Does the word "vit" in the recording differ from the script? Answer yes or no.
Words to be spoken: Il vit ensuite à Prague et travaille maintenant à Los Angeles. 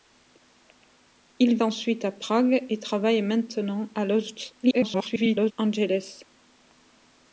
yes